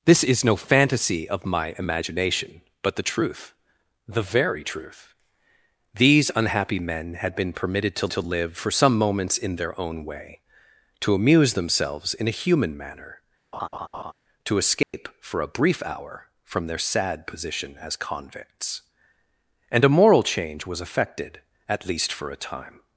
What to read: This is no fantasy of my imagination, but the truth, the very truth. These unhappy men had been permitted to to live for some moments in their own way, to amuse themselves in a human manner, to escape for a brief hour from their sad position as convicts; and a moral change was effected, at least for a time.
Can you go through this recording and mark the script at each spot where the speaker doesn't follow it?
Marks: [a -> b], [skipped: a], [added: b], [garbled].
This is no fantasy of my imagination, but the truth, the very truth. These unhappy men had been permitted to to live for some moments in their own way, to amuse themselves in a human manner, to escape for a brief hour from their sad position as convicts; and a moral change was effected, at least for a time.